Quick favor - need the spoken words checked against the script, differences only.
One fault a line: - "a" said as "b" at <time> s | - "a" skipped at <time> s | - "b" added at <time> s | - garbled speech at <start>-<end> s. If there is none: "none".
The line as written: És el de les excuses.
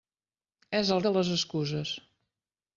none